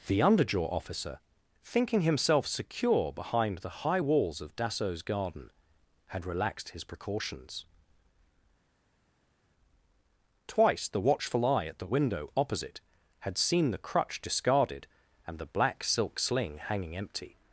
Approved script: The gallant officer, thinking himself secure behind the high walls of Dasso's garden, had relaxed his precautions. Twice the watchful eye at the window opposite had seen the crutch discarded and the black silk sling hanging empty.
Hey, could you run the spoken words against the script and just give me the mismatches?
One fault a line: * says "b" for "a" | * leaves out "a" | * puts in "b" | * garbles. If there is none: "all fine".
* says "underjaw" for "gallant"